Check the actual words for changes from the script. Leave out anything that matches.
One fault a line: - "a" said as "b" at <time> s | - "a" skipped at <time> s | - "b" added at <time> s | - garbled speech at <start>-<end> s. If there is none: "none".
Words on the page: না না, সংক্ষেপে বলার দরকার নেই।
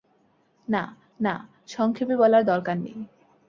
none